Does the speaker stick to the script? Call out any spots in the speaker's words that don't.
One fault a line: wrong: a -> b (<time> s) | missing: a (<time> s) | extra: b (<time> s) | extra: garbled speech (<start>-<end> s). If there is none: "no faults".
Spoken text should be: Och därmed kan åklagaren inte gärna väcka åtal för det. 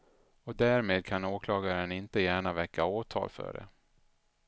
no faults